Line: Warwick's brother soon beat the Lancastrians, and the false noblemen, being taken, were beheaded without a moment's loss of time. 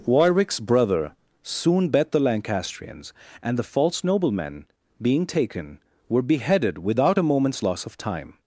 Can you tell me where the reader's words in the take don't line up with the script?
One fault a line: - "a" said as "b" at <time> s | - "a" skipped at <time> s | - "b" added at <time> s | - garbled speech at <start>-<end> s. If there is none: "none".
- "beat" said as "bet" at 1.9 s